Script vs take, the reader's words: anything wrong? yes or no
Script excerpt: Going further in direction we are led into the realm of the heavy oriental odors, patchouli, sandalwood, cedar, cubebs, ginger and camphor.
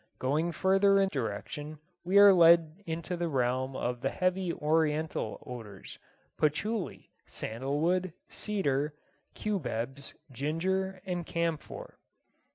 no